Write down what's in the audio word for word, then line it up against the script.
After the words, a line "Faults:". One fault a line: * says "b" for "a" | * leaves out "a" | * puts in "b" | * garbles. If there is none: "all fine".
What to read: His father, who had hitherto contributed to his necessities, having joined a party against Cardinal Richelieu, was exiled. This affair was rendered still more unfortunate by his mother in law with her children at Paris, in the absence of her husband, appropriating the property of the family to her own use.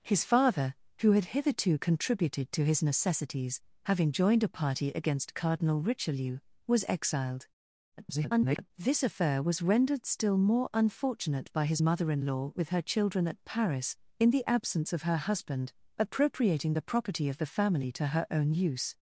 His father, who had hitherto contributed to his necessities, having joined a party against Cardinal Richelieu, was exiled. [garbled] This affair was rendered still more unfortunate by his mother in law with her children at Paris, in the absence of her husband, appropriating the property of the family to her own use.
Faults:
* garbles